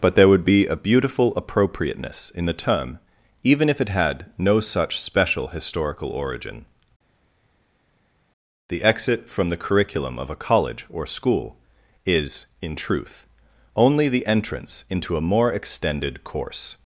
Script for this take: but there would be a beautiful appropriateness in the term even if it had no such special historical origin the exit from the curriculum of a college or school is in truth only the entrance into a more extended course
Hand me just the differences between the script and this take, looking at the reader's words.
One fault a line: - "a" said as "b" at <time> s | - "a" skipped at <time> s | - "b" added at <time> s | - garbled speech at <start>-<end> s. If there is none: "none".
none